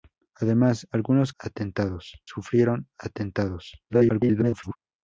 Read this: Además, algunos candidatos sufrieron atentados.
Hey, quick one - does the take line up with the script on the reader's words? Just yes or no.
no